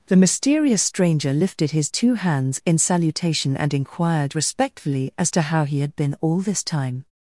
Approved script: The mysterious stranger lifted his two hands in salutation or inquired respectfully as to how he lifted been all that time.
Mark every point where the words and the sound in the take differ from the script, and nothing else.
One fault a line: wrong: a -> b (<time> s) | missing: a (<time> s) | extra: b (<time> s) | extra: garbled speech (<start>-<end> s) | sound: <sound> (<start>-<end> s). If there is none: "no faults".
wrong: or -> and (3.5 s)
wrong: lifted -> had (5.8 s)
wrong: that -> this (6.4 s)